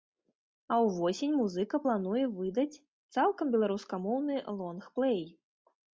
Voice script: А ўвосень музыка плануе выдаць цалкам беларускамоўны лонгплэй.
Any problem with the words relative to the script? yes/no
no